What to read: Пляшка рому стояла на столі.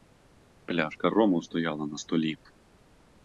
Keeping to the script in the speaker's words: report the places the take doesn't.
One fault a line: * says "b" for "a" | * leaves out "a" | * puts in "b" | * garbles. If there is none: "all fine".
all fine